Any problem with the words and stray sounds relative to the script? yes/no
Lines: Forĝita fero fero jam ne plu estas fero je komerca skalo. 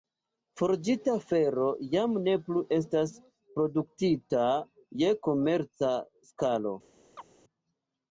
yes